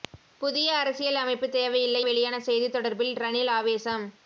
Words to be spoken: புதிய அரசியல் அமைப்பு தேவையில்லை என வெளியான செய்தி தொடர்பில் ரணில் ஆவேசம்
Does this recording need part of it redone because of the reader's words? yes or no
yes